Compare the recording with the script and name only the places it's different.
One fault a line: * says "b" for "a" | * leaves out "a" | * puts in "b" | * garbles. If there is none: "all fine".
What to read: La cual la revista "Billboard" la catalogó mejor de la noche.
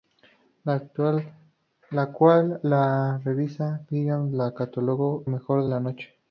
all fine